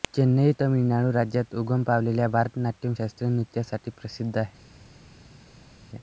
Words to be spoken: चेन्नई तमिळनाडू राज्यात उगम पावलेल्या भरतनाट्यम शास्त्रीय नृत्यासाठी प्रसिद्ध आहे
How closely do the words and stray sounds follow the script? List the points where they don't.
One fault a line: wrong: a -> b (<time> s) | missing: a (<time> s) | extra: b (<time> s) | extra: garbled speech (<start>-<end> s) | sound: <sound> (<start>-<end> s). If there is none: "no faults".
no faults